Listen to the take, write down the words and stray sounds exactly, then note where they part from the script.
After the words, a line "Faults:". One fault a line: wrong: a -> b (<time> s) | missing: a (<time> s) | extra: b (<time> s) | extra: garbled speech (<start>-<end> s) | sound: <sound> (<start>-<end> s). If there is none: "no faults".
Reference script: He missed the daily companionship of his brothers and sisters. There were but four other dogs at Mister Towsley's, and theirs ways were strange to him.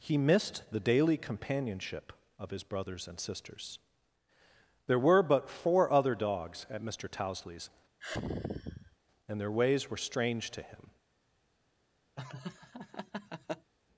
He missed the daily companionship of his brothers and sisters. There were but four other dogs at Mister Towsley's, and their ways were strange to him.
Faults:
sound: sigh (8.0-9.0 s)
wrong: theirs -> their (9.4 s)
sound: laugh (12.2-13.7 s)